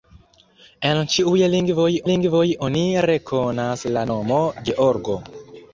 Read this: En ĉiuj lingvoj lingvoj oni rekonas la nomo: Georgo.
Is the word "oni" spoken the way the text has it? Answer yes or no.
yes